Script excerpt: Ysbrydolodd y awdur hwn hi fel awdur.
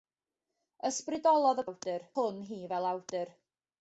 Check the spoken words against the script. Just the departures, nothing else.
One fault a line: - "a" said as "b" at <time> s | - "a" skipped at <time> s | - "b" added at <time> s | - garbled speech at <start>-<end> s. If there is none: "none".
none